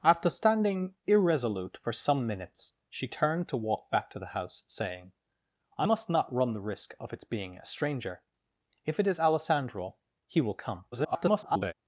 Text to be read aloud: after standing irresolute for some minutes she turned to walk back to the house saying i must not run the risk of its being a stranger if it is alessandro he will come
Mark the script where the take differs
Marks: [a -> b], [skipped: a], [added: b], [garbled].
after standing irresolute for some minutes she turned to walk back to the house saying i must not run the risk of its being a stranger if it is alessandro he will come [garbled]